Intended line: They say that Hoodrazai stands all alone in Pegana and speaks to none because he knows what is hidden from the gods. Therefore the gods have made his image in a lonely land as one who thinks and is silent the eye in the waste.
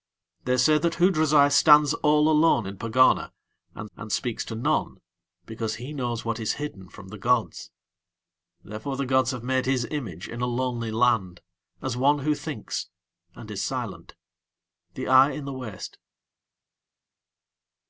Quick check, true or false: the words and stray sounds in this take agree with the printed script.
false